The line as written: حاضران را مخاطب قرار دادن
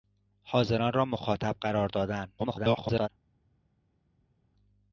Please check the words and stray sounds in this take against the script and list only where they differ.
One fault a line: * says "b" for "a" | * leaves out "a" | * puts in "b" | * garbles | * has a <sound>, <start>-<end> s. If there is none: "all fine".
* garbles